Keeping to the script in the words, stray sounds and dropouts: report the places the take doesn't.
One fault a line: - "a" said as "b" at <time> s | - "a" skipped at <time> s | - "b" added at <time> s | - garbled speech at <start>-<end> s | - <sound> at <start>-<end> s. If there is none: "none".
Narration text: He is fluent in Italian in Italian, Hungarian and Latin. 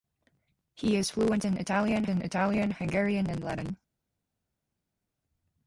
none